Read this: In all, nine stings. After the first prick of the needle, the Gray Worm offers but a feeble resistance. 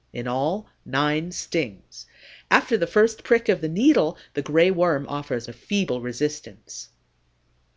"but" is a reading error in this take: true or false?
true